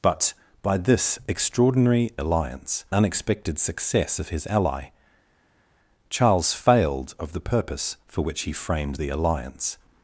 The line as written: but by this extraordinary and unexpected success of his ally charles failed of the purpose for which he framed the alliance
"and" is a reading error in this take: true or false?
true